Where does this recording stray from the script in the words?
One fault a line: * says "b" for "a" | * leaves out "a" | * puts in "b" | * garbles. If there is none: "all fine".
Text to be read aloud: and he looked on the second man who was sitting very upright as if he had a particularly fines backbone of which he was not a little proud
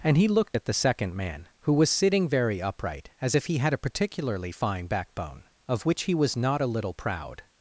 * says "at" for "on"
* says "fine" for "fines"